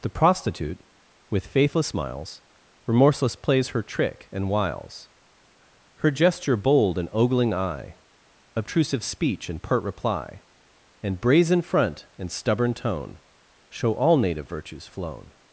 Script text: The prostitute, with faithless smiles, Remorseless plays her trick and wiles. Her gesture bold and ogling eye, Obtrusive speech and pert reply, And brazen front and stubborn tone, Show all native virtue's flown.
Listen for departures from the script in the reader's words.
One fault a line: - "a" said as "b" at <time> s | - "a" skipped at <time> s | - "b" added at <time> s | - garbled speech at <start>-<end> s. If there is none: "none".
none